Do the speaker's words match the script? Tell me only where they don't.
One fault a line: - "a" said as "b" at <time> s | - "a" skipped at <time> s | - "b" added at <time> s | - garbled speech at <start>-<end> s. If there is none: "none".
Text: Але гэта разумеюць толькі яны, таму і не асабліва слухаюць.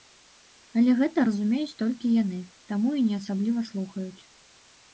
none